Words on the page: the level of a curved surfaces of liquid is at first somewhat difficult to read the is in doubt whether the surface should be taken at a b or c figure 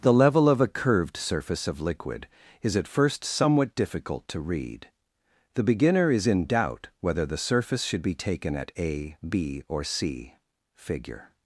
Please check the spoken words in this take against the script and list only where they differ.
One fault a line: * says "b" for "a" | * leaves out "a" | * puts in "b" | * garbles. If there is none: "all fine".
* says "surface" for "surfaces"
* puts in "beginner"